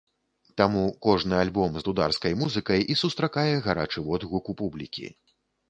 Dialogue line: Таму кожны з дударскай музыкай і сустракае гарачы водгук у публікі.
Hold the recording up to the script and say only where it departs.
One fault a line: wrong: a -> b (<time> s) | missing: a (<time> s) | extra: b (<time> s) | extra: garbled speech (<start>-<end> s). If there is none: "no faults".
extra: альбом (1.4 s)